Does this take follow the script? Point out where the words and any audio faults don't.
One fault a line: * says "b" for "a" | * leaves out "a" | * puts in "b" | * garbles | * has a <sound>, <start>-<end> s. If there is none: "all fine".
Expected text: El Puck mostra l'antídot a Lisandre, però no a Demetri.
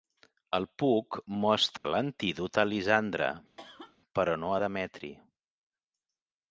* has a dropout, 1.8-1.8 s
* has a cough, 3.6-4.0 s